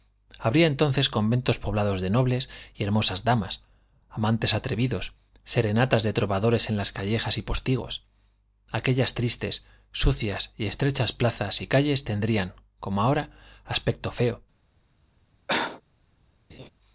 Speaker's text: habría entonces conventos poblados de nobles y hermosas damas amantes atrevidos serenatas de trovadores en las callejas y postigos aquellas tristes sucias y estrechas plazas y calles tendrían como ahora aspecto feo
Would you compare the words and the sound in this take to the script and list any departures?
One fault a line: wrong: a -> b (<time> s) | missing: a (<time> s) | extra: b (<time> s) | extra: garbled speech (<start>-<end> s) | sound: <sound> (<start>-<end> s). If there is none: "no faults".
sound: cough (15.5-15.8 s)
sound: laugh (16.5-16.7 s)